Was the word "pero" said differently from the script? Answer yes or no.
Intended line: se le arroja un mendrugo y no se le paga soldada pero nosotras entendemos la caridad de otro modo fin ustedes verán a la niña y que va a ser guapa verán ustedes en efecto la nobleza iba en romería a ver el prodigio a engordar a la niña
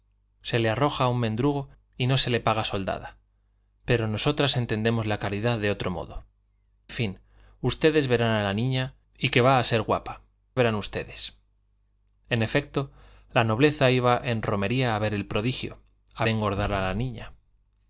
no